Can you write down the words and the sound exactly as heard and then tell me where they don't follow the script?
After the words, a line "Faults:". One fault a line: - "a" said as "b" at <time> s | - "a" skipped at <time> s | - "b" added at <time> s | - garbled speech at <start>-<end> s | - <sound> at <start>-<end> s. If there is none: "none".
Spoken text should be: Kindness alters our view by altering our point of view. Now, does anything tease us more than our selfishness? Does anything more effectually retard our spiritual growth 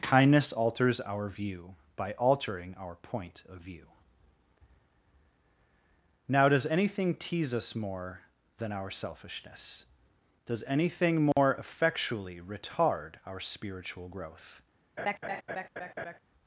Kindness alters our view by altering our point of view. Now, does anything tease us more than our selfishness? Does anything more effectually retard our spiritual growth
Faults:
- dropout at 11.3-11.4 s
- laugh at 15.0-16.2 s